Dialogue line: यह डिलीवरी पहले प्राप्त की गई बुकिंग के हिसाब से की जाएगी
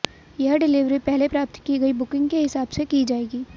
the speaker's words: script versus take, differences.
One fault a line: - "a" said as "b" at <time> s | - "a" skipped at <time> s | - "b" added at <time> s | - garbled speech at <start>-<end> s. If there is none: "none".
none